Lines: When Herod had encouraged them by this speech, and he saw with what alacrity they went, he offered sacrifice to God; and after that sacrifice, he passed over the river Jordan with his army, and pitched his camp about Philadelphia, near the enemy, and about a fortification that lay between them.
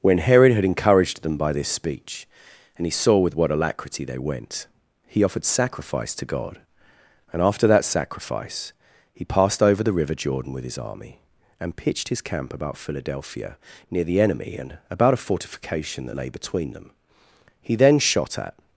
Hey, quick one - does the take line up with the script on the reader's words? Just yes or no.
no